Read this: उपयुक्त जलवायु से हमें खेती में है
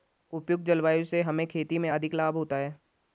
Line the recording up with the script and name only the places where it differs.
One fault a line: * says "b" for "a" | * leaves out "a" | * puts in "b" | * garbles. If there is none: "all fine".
* puts in "अधिक लाभ होता"